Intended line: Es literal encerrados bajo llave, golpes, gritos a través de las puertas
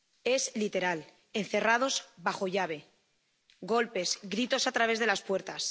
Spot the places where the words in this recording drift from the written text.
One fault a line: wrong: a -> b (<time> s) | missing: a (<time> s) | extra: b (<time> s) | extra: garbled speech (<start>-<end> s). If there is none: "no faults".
no faults